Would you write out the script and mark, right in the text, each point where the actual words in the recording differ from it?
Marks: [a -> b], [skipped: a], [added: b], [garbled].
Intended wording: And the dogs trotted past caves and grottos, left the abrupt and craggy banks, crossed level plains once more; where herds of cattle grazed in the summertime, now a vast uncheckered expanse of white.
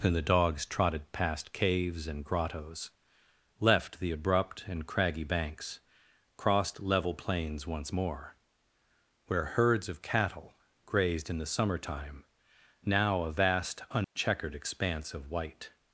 And the dogs trotted past caves and grottos, left the abrupt and craggy banks, crossed level plains once more; where herds of cattle grazed in the summertime, now a vast uncheckered expanse of white.